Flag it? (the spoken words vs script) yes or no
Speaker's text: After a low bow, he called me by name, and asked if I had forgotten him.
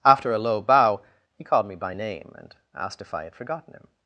no